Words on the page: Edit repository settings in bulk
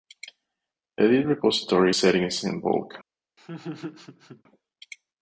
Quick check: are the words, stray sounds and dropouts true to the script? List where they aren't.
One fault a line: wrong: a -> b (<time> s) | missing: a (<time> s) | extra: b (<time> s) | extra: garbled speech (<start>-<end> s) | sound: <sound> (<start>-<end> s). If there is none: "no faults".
sound: laugh (3.4-4.4 s)